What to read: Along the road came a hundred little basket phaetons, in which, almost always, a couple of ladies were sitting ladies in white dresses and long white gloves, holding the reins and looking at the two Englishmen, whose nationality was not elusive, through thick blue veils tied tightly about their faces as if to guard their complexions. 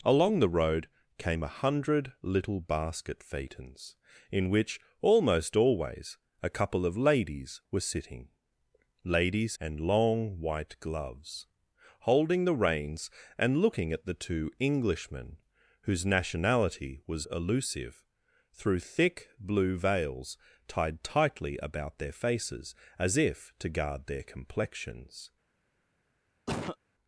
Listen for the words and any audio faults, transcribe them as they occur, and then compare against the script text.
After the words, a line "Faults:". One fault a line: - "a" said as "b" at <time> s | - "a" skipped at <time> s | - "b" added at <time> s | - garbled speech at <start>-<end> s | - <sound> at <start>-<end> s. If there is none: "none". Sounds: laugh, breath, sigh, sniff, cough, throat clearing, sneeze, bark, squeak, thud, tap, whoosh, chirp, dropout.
Along the road came a hundred little basket phaetons, in which, almost always, a couple of ladies were sitting ladies and long white gloves, holding the reins and looking at the two Englishmen, whose nationality was elusive, through thick blue veils tied tightly about their faces as if to guard their complexions.
Faults:
- "in white dresses" skipped at 9.6 s
- "not" skipped at 17.3 s
- cough at 26.5-26.8 s